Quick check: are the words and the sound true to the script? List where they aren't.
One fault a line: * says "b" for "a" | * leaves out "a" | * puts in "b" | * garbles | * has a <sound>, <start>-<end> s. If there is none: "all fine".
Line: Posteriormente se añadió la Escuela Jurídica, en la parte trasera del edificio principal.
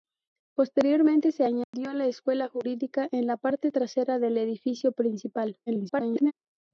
* has a dropout, 1.6-1.7 s
* garbles